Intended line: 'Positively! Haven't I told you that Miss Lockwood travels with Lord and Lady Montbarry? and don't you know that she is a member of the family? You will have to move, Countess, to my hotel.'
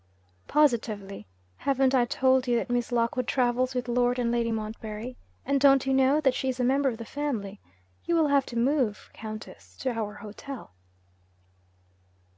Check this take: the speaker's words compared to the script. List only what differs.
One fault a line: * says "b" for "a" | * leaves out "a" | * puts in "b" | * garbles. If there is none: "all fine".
* says "our" for "my"